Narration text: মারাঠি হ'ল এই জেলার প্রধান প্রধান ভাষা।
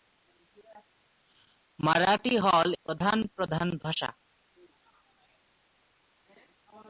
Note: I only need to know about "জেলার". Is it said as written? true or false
false